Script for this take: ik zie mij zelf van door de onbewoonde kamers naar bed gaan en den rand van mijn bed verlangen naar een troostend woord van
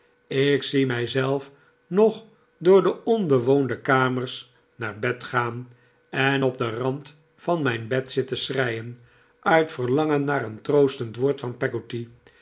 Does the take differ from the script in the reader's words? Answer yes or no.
yes